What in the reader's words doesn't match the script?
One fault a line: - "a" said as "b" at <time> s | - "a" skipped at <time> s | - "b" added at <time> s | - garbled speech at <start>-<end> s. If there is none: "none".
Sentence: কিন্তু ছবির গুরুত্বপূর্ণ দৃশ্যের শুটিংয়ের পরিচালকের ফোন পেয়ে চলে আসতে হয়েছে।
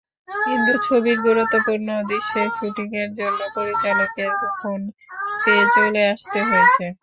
- "জন্য" added at 3.2 s